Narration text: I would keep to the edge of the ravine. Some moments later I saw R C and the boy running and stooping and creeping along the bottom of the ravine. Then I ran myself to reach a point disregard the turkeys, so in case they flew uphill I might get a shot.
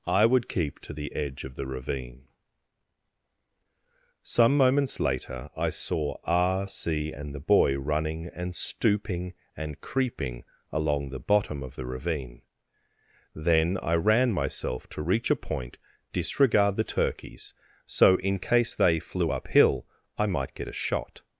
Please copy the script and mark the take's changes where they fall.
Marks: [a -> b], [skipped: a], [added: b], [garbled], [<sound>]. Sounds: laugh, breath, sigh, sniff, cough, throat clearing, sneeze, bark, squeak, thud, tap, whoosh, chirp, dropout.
I would keep to the edge of the ravine. Some moments later I saw R C and the boy running and stooping and creeping along the bottom of the ravine. Then I ran myself to reach a point disregard the turkeys, so in case they flew uphill I might get a shot.